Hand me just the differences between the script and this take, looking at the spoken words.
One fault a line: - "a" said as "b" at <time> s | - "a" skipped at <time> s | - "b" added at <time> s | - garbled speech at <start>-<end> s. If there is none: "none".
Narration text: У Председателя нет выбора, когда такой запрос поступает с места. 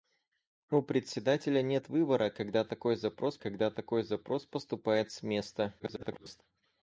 - "когда такой запрос" added at 3.4 s
- garbled speech at 5.8-6.4 s